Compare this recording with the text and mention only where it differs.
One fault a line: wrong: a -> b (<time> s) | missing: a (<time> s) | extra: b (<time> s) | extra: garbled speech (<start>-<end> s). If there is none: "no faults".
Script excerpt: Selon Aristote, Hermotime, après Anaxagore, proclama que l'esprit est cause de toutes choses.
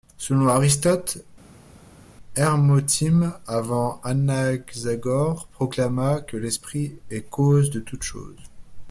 wrong: après -> avant (3.5 s)